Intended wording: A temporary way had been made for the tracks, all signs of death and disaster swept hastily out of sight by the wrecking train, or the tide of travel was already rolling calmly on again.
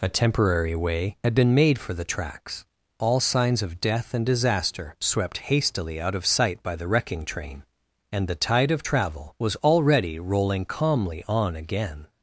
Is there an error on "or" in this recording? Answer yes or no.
yes